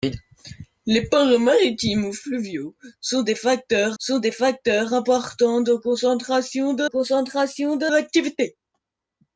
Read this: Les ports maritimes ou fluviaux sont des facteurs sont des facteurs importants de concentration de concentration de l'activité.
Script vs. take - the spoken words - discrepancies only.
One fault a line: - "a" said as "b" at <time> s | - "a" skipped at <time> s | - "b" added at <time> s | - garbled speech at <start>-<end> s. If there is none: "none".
none